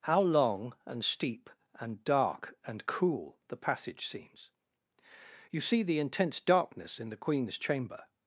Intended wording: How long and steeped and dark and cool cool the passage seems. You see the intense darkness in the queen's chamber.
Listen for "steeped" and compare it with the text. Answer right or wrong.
wrong